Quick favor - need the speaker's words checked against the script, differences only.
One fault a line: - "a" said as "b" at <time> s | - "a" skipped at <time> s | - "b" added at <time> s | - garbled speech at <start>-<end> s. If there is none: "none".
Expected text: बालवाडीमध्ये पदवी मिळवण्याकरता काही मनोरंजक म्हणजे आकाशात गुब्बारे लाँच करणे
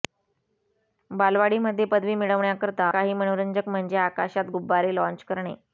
none